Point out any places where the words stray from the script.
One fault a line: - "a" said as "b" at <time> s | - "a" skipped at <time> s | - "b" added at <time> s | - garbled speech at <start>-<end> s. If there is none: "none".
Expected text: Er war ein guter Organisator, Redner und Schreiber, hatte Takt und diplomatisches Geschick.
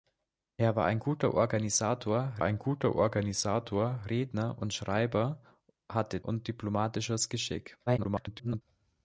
- "ein guter Organisator" added at 2.4 s
- "Takt" skipped at 6.2 s
- garbled speech at 7.9-8.6 s